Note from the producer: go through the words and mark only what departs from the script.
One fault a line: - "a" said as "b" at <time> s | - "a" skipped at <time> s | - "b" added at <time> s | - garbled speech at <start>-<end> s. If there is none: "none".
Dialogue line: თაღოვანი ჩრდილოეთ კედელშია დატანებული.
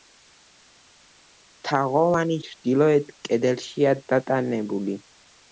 none